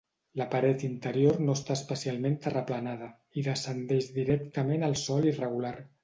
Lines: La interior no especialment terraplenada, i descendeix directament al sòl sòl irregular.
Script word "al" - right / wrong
right